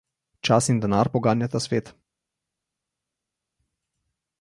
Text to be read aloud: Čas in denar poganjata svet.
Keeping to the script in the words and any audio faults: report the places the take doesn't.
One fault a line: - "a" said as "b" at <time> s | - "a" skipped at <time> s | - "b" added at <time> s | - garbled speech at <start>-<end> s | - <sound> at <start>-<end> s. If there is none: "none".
none